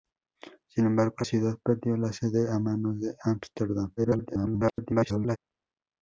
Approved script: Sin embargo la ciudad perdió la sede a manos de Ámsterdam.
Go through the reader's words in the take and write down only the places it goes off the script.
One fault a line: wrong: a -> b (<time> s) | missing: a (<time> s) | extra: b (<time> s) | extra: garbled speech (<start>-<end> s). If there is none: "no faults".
missing: la (1.2 s)
extra: garbled speech (4.0-5.4 s)